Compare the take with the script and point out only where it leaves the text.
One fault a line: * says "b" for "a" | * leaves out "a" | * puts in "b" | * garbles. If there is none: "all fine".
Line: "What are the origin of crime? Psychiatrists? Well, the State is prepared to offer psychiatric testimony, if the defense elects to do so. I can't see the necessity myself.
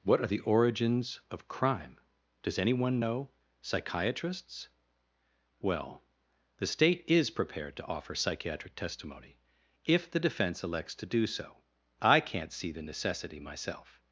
* says "origins" for "origin"
* puts in "Does anyone know"